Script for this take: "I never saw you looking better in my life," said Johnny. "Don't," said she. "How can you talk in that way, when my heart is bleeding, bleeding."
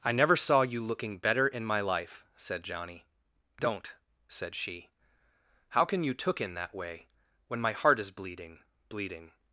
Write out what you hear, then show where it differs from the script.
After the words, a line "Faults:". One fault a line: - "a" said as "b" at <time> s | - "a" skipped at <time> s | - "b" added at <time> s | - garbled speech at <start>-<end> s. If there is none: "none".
"I never saw you looking better in my life," said Johnny. "Don't," said she. "How can you took in that way, when my heart is bleeding, bleeding."
Faults:
- "talk" said as "took" at 6.1 s